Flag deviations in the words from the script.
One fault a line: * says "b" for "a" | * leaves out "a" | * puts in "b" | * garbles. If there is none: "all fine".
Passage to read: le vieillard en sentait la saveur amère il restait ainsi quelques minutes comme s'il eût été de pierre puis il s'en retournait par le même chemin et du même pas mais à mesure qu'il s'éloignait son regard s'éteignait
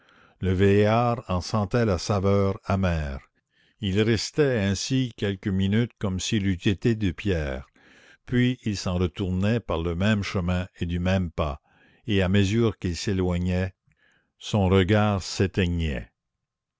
* says "et" for "mais"